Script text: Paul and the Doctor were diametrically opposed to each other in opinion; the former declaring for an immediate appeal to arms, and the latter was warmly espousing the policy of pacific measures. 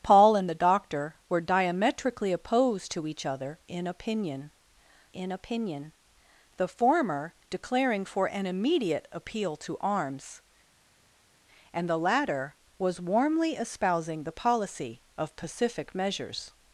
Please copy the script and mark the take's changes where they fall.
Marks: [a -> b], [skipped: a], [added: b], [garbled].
Paul and the Doctor were diametrically opposed to each other in opinion; [added: in opinion] the former declaring for an immediate appeal to arms, and the latter was warmly espousing the policy of pacific measures.